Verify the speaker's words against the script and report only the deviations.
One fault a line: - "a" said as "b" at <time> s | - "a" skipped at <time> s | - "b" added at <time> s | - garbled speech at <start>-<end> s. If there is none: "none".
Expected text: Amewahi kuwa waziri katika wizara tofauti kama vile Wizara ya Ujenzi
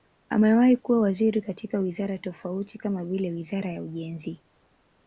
none